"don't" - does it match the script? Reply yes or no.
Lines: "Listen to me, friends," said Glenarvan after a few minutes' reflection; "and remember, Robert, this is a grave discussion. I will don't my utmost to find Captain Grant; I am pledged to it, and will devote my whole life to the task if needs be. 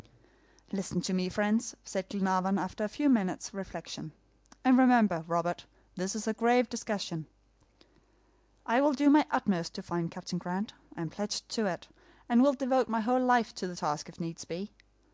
no